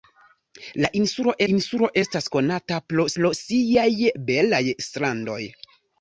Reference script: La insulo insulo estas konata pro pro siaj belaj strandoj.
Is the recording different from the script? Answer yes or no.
no